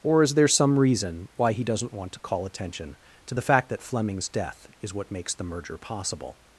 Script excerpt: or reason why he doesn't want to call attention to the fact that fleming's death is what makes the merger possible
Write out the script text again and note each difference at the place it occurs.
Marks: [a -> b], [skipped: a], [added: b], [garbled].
or [added: is there some] reason why he doesn't want to call attention to the fact that fleming's death is what makes the merger possible